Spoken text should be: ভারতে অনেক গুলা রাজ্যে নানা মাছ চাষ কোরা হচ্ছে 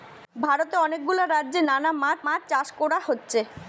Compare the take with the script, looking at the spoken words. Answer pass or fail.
fail